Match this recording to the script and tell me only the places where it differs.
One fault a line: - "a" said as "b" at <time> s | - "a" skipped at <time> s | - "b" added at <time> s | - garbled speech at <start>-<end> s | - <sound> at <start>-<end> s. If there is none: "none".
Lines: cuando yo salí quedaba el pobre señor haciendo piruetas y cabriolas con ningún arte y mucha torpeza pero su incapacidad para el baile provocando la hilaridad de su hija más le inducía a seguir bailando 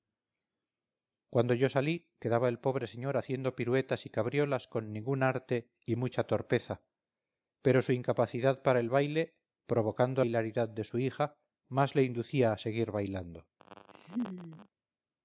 - "la" skipped at 10.2 s
- laugh at 13.6-14.7 s